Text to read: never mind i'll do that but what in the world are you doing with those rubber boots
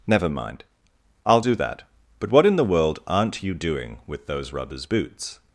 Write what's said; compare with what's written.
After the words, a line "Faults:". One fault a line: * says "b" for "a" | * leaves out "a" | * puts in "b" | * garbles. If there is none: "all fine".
never mind i'll do that but what in the world aren't you doing with those rubbers boots
Faults:
* says "aren't" for "are"
* says "rubbers" for "rubber"